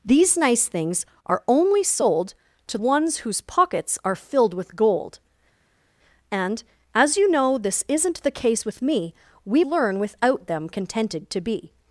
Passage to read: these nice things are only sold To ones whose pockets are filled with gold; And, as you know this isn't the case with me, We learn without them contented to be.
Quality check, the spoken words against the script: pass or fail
pass